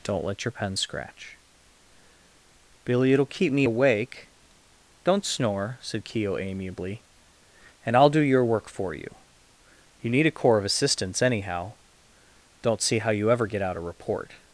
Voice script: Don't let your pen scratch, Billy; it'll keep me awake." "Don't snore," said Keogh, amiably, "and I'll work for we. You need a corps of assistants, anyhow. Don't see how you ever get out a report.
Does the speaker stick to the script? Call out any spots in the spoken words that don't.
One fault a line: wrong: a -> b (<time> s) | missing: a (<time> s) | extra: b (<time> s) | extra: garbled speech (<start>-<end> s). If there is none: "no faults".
extra: do your (8.1 s)
wrong: we -> you (8.9 s)